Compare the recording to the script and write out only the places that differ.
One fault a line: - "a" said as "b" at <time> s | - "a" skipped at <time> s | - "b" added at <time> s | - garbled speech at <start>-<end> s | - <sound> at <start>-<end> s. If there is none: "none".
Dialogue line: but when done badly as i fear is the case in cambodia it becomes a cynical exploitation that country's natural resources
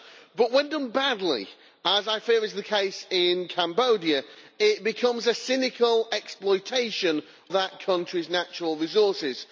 none